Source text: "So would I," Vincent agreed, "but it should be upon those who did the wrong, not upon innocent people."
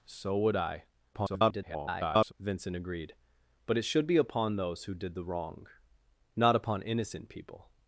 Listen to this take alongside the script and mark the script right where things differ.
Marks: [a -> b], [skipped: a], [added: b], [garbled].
"So would I," [garbled] Vincent agreed, "but it should be upon those who did the wrong, not upon innocent people."